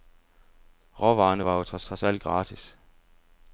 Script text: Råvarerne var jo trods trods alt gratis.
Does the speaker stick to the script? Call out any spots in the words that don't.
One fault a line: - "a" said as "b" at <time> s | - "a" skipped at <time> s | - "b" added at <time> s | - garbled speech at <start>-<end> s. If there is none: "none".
none